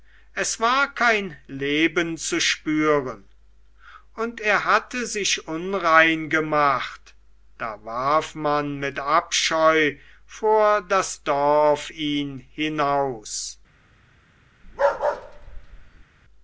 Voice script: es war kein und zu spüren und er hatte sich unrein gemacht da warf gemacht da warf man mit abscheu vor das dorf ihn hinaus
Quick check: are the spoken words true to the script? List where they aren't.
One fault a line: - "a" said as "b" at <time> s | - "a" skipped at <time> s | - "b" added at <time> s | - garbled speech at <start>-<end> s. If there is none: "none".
- "und" said as "leben" at 1.4 s
- "gemacht da warf" skipped at 8.3 s